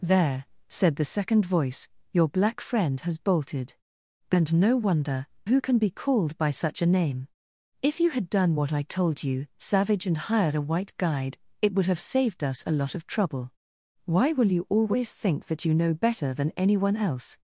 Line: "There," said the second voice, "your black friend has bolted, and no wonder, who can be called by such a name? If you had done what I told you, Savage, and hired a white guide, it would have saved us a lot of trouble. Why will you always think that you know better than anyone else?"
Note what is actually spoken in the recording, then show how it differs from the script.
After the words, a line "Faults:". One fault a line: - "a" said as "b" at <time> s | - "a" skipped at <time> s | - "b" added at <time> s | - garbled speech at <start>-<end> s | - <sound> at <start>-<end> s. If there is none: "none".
"There," said the second voice, "your black friend has bolted, and no wonder, who can be called by such a name? If you had done what I told you, Savage, and hired a white guide, it would have saved us a lot of trouble. Why will you always think that you know better than anyone else?"
Faults:
none